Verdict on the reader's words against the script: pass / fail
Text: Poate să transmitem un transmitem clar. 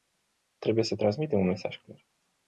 fail